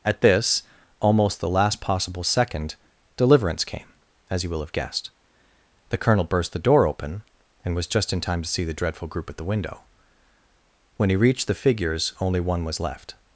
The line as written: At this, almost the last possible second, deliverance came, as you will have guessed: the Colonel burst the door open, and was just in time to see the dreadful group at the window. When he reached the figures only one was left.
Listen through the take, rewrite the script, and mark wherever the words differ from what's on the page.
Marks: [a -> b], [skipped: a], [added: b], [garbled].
At this, almost the last possible second, deliverance came, as you will have guessed: the Colonel burst the door open, and was just in time to see the dreadful group at the window. When he reached the figures only one was left.